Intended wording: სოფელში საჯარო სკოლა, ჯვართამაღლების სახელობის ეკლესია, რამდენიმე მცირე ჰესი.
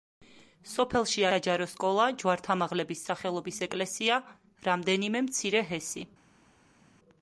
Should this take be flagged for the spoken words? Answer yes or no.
no